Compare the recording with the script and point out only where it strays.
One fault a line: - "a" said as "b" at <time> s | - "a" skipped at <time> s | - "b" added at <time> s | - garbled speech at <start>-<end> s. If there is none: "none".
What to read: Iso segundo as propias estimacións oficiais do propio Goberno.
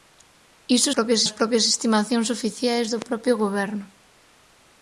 - "segundo" said as "propias" at 0.9 s